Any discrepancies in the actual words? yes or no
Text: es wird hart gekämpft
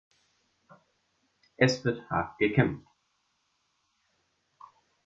no